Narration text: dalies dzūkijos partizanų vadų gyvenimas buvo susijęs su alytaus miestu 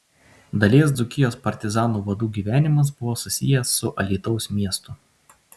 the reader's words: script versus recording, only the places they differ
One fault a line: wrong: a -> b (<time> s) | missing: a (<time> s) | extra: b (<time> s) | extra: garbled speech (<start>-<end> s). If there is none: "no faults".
no faults